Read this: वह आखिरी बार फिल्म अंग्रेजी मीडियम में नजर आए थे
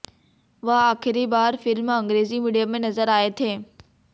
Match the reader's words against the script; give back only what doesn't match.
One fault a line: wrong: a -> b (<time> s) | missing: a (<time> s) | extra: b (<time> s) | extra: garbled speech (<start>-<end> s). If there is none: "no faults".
no faults